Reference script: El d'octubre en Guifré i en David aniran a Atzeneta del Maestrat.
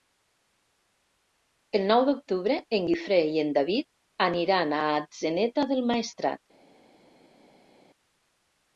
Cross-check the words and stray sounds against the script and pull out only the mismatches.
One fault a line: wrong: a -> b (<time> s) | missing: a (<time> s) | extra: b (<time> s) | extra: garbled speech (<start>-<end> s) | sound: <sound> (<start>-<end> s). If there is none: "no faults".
extra: nou (1.9 s)